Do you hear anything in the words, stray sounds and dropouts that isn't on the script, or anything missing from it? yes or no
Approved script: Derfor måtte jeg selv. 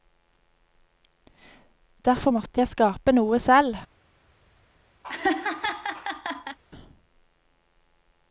yes